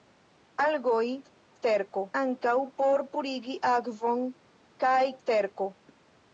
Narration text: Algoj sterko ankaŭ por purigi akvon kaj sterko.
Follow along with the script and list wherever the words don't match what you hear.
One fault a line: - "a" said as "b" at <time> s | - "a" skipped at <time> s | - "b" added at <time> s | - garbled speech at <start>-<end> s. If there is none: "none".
none